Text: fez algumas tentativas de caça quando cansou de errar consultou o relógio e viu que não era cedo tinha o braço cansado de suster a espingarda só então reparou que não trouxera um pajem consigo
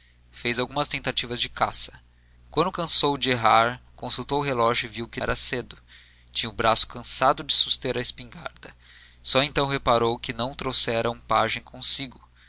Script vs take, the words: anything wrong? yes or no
yes